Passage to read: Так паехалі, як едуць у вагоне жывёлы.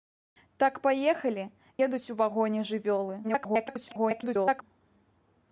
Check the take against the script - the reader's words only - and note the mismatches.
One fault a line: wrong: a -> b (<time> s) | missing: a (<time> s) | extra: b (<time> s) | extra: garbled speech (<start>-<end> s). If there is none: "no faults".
missing: як (1.4 s)
extra: garbled speech (3.2-4.6 s)